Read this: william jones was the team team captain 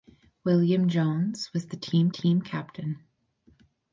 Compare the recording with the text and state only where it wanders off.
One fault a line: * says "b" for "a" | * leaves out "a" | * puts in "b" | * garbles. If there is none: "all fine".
all fine